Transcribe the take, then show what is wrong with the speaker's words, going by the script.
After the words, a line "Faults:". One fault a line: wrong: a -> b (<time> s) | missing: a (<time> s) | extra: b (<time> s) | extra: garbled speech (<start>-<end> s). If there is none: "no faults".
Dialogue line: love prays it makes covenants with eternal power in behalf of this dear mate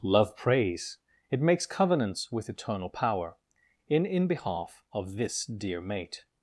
love prays it makes covenants with eternal power in in behalf of this dear mate
Faults:
extra: in (4.1 s)